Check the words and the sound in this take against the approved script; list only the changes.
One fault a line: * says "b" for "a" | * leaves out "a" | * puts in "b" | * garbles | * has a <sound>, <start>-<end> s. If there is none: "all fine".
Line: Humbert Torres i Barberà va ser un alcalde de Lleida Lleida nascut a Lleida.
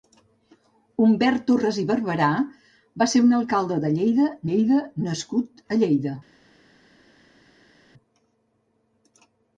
all fine